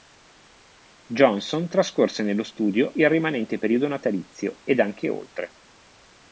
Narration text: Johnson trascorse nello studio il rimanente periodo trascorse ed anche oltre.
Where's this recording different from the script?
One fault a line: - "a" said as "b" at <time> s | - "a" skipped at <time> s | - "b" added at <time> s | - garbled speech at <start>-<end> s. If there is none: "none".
- "trascorse" said as "natalizio" at 3.9 s